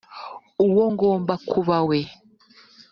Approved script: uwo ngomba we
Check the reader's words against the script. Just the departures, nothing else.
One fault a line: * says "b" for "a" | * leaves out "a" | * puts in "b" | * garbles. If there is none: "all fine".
* puts in "kuba"